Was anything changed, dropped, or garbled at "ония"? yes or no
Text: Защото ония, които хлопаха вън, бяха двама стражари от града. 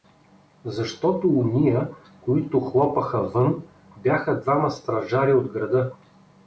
no